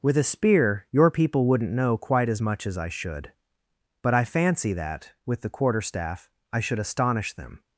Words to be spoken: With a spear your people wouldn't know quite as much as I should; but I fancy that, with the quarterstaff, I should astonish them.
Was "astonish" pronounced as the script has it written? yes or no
yes